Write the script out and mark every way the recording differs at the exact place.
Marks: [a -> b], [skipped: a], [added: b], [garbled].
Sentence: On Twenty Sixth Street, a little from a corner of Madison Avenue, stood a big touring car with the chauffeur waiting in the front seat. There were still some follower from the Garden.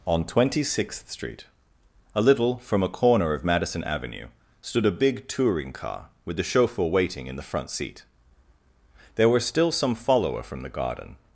On Twenty Sixth Street, a little from a corner of Madison Avenue, stood a big touring car with the chauffeur waiting in the front seat. There were still some follower from the Garden.